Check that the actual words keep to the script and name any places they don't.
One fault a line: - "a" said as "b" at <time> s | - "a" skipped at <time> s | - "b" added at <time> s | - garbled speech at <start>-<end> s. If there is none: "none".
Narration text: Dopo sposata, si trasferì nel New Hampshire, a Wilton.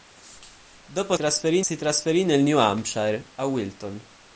- "sposata" said as "trasferì" at 1.1 s